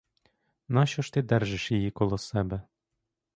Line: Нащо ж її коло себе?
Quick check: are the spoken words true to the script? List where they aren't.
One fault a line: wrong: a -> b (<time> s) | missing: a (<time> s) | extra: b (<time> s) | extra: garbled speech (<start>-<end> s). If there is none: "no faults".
extra: ти держиш (1.1 s)